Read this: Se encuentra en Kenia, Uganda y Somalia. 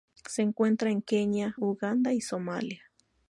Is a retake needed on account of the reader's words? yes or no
no